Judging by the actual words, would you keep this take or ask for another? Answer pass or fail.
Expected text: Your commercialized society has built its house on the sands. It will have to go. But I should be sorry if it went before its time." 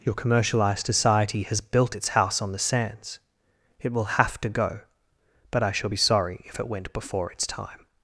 fail